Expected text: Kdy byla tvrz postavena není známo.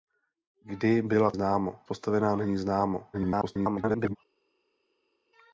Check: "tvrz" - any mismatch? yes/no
yes